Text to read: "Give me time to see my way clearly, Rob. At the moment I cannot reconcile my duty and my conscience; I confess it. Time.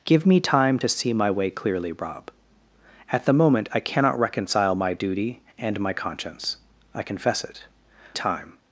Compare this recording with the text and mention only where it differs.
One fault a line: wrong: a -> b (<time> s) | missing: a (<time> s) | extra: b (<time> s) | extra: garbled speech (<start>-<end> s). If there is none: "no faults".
no faults